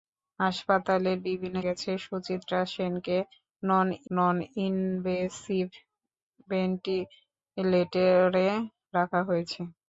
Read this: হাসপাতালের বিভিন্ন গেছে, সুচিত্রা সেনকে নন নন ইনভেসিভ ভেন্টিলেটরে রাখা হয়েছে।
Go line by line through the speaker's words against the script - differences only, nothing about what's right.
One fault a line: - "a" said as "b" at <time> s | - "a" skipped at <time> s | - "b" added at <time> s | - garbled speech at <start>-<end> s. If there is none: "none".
none